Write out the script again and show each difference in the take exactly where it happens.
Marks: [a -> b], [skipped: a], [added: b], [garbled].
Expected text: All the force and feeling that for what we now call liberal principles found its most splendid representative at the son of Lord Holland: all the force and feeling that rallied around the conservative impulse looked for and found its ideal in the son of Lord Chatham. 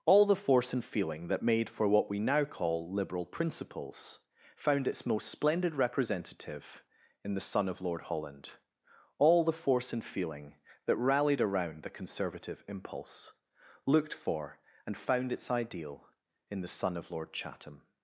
All the force and feeling that [added: made] for what we now call liberal principles found its most splendid representative [at -> in] the son of Lord Holland: all the force and feeling that rallied around the conservative impulse looked for and found its ideal in the son of Lord Chatham.